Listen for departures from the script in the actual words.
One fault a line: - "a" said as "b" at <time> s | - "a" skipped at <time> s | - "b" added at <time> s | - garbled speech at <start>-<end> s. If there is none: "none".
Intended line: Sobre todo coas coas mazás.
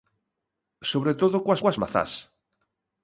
none